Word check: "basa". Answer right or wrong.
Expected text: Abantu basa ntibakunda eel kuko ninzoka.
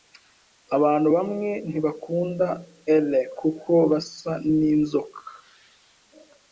wrong